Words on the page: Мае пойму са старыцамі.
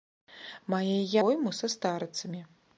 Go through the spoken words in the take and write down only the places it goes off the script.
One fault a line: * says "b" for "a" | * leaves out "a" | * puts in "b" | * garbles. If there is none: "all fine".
all fine